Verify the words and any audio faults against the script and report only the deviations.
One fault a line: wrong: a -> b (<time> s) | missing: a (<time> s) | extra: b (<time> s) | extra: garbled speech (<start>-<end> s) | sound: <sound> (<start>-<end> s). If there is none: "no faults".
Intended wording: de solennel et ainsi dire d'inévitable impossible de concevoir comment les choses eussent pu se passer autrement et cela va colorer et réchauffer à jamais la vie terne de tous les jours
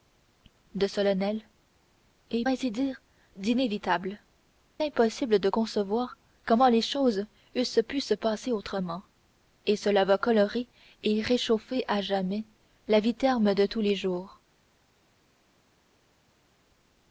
no faults